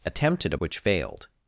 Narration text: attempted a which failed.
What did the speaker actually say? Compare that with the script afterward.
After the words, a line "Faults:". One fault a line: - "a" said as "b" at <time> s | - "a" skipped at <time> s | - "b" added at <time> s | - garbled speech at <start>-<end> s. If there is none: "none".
attempted a which failed.
Faults:
none